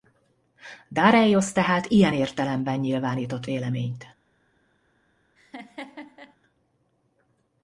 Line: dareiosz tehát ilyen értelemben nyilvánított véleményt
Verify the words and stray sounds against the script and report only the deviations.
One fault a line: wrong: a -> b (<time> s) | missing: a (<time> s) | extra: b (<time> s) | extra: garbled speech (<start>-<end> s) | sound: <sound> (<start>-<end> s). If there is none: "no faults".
sound: laugh (5.4-6.4 s)